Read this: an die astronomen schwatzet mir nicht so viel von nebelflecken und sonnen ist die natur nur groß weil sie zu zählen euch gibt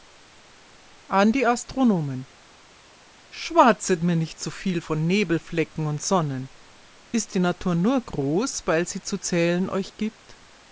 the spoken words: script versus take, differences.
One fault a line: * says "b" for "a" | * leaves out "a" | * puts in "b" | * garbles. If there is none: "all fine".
all fine